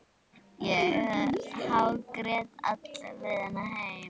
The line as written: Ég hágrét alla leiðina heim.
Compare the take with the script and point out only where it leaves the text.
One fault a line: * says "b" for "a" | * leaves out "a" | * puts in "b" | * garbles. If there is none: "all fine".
all fine